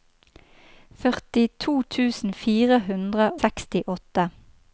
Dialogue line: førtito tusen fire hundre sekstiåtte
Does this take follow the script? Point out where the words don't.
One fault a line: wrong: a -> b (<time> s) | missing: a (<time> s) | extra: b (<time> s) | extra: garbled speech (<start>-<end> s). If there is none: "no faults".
no faults